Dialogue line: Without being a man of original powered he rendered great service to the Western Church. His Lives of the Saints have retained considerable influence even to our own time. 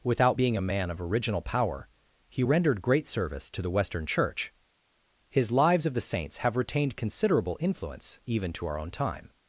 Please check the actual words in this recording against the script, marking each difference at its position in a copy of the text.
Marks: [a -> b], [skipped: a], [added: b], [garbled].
Without being a man of original [powered -> power] he rendered great service to the Western Church. His Lives of the Saints have retained considerable influence even to our own time.